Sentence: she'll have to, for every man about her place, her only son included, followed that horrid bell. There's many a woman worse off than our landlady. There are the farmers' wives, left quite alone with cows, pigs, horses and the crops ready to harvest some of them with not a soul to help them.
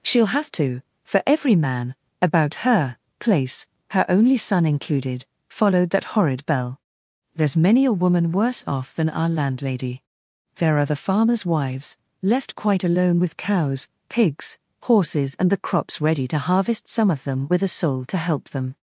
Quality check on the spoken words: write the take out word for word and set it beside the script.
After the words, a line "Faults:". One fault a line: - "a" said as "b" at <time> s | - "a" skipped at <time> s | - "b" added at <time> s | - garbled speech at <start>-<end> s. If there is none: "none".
she'll have to, for every man about her place, her only son included, followed that horrid bell. There's many a woman worse off than our landlady. There are the farmers' wives, left quite alone with cows, pigs, horses and the crops ready to harvest some of them with a soul to help them.
Faults:
- "not" skipped at 17.6 s